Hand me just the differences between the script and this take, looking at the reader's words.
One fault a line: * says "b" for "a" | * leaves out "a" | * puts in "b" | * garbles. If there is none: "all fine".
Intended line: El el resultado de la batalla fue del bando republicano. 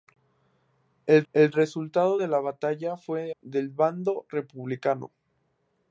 all fine